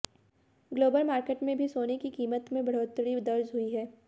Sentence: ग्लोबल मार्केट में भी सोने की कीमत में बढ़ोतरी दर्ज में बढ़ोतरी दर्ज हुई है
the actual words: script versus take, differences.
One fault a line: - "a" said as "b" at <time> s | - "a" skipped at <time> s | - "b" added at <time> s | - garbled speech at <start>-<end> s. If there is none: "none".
- "में बढ़ोतरी दर्ज" skipped at 3.5 s